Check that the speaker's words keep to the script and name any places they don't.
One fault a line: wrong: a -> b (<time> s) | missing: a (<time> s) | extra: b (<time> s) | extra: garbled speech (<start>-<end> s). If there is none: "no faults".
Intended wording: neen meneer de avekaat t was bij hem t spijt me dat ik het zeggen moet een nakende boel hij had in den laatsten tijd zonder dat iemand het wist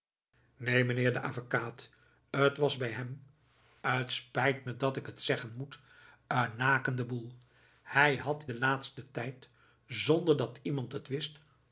missing: in (8.4 s)